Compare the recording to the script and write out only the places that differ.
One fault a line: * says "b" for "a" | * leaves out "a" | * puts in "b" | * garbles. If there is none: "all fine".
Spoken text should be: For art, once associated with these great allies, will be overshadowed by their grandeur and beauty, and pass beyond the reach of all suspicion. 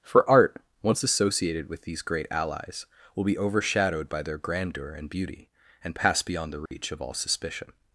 all fine